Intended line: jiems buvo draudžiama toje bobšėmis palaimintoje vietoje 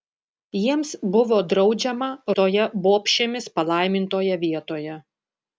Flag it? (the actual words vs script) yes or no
no